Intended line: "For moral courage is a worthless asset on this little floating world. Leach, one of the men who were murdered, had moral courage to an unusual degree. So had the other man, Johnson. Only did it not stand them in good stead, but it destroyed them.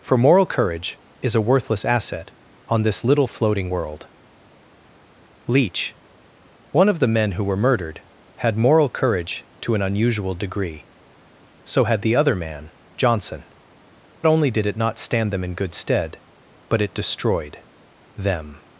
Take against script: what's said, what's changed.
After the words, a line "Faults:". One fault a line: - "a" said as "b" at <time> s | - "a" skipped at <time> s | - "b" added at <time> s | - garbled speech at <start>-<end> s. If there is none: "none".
"For moral courage is a worthless asset on this little floating world. Leach, one of the men who were murdered, had moral courage to an unusual degree. So had the other man, Johnson. Only did it not stand them in good stead, but it destroyed them.
Faults:
none